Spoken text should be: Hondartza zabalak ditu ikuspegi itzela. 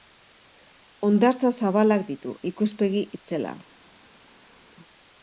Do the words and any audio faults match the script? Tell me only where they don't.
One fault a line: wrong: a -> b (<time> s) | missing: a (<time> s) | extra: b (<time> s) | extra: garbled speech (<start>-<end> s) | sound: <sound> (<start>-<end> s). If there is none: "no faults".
no faults